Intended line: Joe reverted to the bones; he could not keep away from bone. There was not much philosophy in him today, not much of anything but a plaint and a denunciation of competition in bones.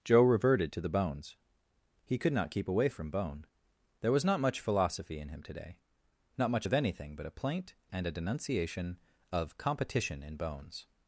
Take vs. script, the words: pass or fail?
pass